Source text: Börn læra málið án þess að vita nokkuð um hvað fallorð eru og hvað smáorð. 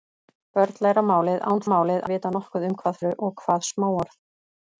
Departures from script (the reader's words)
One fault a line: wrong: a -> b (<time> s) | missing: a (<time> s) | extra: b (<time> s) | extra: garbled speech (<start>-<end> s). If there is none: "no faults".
wrong: þess -> málið (1.7 s)
missing: fallorð (3.0 s)